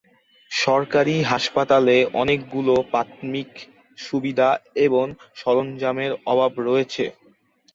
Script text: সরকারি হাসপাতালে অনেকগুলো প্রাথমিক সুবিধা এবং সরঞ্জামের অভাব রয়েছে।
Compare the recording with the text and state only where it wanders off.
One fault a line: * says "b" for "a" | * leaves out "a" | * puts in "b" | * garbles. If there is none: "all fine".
all fine